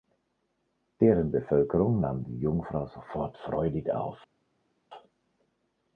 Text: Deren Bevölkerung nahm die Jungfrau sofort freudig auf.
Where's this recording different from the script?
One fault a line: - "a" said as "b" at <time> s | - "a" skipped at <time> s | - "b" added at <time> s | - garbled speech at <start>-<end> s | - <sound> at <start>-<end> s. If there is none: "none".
none